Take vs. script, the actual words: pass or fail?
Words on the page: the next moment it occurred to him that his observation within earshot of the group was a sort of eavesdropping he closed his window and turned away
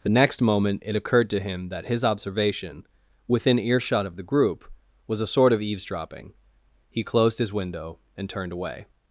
pass